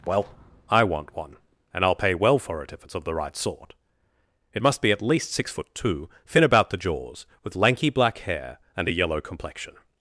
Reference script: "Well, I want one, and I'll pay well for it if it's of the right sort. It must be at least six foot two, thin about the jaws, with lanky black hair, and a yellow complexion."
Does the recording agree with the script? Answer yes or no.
yes